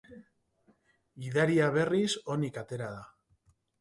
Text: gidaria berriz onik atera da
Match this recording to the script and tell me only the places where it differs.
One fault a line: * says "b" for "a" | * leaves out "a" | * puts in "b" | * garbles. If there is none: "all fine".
all fine